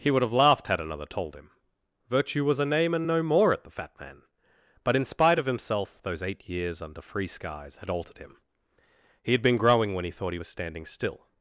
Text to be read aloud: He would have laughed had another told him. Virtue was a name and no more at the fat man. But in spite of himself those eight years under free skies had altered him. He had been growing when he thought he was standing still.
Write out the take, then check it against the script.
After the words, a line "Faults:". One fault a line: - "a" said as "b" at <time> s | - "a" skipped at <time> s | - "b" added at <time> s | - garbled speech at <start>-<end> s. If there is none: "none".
He would have laughed had another told him. Virtue was a name and no more at the fat man. But in spite of himself those eight years under free skies had altered him. He had been growing when he thought he was standing still.
Faults:
none